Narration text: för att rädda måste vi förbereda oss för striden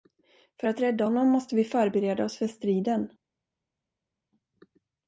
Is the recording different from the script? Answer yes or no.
yes